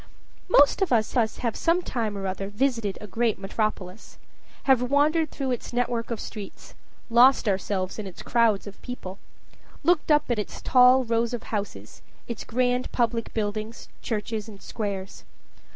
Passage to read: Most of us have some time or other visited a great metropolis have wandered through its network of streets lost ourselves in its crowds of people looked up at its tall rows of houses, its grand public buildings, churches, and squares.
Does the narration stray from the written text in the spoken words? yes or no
yes